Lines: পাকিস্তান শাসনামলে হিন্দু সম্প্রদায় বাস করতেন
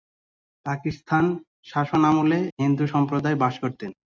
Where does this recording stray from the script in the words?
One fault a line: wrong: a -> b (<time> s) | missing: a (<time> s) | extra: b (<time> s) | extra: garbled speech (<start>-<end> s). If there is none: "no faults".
no faults